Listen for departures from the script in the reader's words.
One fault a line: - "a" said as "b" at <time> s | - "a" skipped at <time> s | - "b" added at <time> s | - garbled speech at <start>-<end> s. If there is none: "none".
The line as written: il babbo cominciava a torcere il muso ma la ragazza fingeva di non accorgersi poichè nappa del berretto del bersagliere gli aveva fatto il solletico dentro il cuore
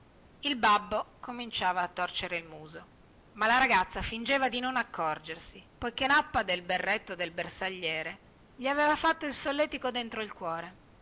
none